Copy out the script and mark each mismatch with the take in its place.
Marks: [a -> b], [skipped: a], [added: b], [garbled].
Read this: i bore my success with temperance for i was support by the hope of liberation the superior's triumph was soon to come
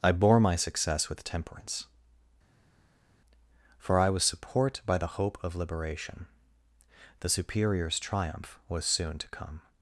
i bore my success with temperance for i was support by the hope of liberation the superior's triumph was soon to come